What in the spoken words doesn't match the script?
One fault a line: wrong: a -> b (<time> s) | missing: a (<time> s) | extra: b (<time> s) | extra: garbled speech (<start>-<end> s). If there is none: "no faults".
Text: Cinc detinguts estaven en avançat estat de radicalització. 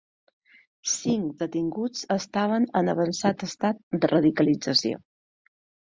no faults